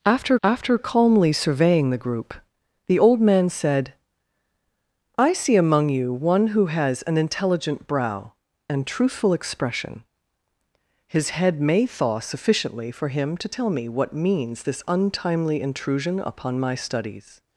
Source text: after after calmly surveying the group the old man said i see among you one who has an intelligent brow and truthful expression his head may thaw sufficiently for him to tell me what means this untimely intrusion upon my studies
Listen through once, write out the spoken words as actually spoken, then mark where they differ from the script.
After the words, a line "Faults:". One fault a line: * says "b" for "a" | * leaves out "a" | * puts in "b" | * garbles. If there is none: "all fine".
after after calmly surveying the group the old man said i see among you one who has an intelligent brow and truthful expression his head may thaw sufficiently for him to tell me what means this untimely intrusion upon my studies
Faults:
all fine